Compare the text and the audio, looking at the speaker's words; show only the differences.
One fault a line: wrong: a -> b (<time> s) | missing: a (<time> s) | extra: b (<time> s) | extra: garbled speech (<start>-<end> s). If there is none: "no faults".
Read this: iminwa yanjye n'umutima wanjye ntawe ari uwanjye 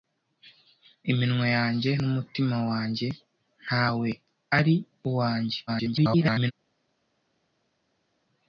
extra: garbled speech (5.7-6.5 s)